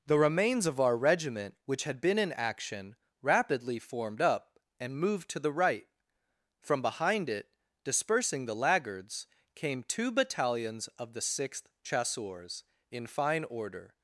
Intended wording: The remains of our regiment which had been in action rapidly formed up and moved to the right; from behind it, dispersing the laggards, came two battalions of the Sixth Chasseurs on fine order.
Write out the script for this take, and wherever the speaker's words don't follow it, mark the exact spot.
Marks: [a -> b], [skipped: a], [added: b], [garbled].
The remains of our regiment which had been in action rapidly formed up and moved to the right; from behind it, dispersing the laggards, came two battalions of the Sixth Chasseurs [on -> in] fine order.